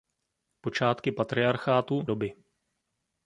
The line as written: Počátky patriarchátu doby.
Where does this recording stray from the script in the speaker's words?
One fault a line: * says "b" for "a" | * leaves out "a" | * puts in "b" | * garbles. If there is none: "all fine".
all fine